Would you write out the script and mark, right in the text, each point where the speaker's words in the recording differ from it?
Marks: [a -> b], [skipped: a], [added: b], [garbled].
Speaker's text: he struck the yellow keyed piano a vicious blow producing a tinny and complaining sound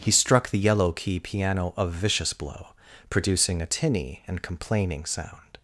he struck the yellow [keyed -> key] piano a vicious blow producing a tinny and complaining sound